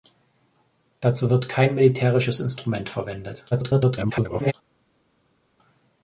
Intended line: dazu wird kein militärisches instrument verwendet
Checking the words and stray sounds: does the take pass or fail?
fail